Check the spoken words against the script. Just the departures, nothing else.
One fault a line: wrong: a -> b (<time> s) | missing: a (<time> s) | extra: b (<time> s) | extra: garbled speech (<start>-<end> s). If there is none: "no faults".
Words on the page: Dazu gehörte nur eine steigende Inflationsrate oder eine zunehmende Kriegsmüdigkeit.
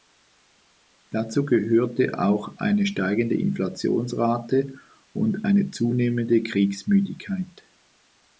wrong: nur -> auch (2.2 s)
wrong: oder -> und (5.1 s)